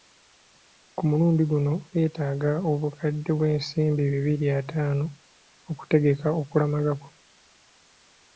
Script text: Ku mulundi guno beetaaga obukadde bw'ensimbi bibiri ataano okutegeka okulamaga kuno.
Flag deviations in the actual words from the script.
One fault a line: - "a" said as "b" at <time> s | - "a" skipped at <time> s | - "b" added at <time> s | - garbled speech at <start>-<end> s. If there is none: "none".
none